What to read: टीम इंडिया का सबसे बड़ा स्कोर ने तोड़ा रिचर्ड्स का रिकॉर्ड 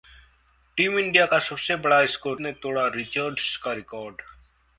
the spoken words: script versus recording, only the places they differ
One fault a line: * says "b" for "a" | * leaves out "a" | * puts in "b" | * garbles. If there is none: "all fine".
all fine